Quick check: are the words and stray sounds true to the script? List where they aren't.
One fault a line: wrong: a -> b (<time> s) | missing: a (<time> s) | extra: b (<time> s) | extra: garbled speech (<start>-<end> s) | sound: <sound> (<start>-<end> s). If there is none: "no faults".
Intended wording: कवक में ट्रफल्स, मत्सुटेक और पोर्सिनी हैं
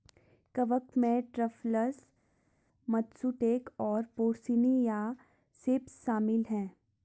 extra: या सेप्स शामिल (4.8 s)